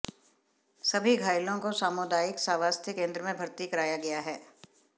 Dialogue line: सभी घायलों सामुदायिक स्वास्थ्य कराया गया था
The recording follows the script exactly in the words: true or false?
false